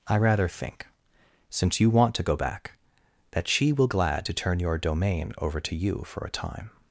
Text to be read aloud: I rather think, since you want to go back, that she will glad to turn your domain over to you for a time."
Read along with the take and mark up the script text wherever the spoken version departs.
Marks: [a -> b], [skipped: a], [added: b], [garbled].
I rather think, since you want to go back, that she will glad to turn your domain over to you for a time."